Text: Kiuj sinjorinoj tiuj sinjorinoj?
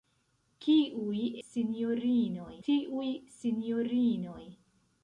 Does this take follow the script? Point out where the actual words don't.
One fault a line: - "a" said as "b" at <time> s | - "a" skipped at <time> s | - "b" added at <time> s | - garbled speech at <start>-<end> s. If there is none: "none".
none